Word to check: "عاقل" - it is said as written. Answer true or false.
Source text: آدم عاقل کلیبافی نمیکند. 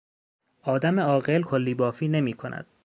true